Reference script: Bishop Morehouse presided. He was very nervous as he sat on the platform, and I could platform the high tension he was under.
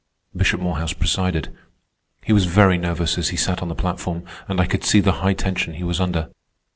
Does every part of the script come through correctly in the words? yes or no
no